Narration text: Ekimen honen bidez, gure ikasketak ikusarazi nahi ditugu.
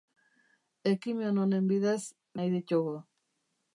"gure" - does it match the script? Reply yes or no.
no